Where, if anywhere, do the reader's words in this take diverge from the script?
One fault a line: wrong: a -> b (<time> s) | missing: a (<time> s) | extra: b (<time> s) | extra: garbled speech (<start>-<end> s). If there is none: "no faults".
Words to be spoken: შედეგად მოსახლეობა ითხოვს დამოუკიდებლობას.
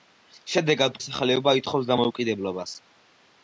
no faults